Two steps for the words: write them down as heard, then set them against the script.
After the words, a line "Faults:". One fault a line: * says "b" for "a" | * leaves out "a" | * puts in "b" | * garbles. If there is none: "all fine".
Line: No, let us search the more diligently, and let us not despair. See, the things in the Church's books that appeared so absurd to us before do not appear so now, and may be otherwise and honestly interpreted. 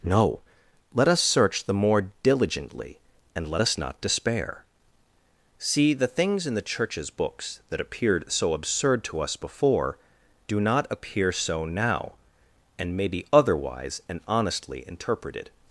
No, let us search the more diligently, and let us not despair. See, the things in the Church's books that appeared so absurd to us before do not appear so now, and may be otherwise and honestly interpreted.
Faults:
all fine